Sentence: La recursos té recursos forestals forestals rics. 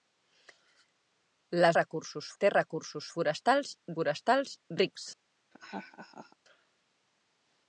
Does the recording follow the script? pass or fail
pass